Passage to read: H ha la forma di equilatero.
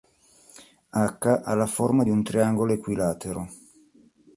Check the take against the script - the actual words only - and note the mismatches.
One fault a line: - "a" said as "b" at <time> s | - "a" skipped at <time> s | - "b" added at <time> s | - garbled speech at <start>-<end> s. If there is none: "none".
- "un triangolo" added at 2.1 s